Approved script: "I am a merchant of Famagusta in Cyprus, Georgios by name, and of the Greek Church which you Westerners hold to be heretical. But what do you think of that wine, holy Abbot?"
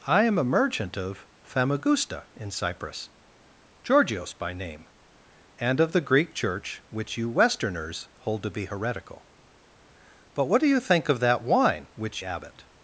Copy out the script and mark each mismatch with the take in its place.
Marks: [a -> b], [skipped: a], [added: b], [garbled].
"I am a merchant of Famagusta in Cyprus, Georgios by name, and of the Greek Church which you Westerners hold to be heretical. But what do you think of that wine, [holy -> which] Abbot?"